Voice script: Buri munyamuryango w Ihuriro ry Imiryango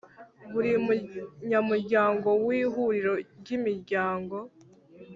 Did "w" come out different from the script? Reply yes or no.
no